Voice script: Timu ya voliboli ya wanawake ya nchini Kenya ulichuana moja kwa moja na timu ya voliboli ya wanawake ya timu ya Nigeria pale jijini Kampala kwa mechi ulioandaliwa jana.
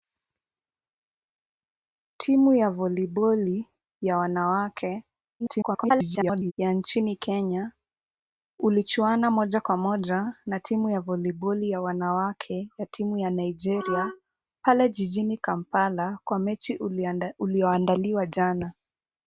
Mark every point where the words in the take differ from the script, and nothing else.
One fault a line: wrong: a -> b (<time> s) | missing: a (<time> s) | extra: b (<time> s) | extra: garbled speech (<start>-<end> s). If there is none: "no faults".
extra: garbled speech (5.4-6.5 s)